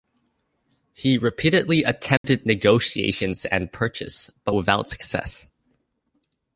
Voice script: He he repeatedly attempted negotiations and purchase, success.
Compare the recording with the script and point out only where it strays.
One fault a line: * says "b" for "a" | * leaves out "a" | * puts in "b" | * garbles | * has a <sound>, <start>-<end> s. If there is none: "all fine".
* leaves out "he"
* has a dropout, 2.2-2.2 s
* puts in "but without"